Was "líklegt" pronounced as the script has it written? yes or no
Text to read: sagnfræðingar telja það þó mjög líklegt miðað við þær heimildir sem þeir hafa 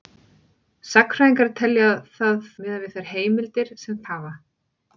no